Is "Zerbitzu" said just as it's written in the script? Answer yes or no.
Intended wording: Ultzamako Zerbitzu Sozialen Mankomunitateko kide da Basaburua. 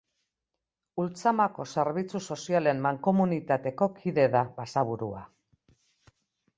yes